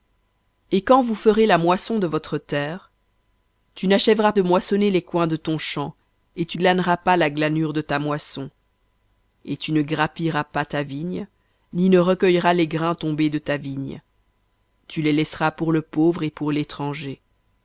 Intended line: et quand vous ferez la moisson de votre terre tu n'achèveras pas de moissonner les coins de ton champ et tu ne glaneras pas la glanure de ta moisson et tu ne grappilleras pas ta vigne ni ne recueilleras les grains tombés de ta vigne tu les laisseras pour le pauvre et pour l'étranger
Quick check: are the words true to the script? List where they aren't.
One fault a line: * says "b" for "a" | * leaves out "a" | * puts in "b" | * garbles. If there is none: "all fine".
* leaves out "pas"
* leaves out "ne"